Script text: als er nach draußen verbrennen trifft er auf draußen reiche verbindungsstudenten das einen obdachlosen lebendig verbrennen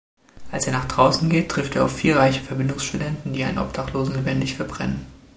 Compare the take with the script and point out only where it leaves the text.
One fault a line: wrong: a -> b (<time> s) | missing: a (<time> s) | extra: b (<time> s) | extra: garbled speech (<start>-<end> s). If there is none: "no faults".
wrong: verbrennen -> geht (1.3 s)
wrong: draußen -> vier (1.9 s)
wrong: das -> die (3.3 s)